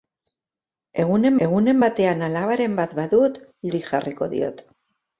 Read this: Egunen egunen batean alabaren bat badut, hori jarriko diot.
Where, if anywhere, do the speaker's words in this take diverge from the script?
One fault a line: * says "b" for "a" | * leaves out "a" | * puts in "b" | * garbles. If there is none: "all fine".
all fine